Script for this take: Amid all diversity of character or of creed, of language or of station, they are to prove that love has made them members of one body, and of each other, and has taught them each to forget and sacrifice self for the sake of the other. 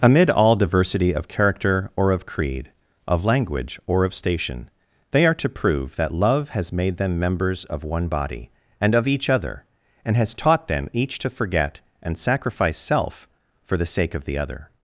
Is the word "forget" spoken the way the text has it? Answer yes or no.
yes